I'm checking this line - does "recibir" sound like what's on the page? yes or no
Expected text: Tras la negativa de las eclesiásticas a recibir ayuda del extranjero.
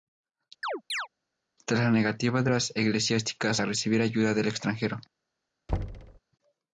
yes